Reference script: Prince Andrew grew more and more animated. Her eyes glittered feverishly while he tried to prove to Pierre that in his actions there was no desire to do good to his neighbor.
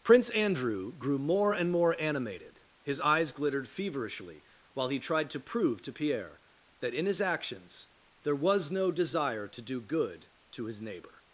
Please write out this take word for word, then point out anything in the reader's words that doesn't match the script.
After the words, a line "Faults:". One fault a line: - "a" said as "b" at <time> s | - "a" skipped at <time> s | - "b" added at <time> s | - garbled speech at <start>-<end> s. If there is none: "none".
Prince Andrew grew more and more animated. His eyes glittered feverishly while he tried to prove to Pierre that in his actions there was no desire to do good to his neighbor.
Faults:
- "Her" said as "His" at 2.8 s